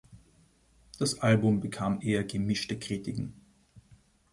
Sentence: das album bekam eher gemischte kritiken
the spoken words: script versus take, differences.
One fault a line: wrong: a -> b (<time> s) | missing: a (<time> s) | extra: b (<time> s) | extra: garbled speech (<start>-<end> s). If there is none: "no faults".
no faults